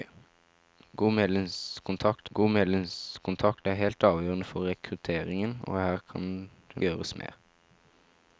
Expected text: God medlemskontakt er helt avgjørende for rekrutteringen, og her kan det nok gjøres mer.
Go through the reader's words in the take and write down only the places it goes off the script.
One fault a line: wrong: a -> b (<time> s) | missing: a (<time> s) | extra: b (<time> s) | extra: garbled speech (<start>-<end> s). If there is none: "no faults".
extra: god medlemskontakt (2.3 s)
missing: nok (6.8 s)